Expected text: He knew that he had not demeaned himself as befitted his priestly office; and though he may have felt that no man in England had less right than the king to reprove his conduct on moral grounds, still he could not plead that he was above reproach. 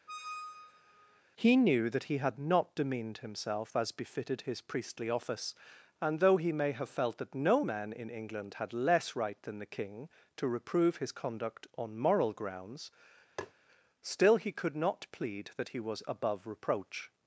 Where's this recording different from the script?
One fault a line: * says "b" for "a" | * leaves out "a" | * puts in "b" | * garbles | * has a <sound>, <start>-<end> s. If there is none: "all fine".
* has a squeak, 0.1-1.2 s
* has a tap, 13.4-13.5 s